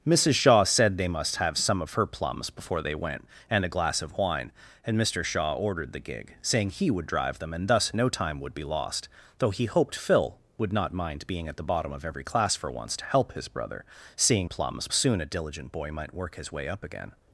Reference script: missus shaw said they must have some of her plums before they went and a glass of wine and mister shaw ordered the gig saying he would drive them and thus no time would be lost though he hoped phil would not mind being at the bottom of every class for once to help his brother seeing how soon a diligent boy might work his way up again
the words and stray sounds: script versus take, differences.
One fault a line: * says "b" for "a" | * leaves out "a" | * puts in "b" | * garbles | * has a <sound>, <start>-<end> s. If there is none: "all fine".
* says "plums" for "how"